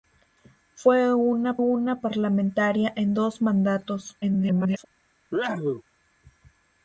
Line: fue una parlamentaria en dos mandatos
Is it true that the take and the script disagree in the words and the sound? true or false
true